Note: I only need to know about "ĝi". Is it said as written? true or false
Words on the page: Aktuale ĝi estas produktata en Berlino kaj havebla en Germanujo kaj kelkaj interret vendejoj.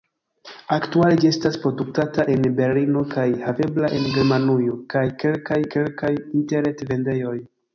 true